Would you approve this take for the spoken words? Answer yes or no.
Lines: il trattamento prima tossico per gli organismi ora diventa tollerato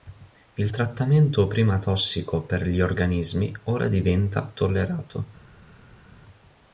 yes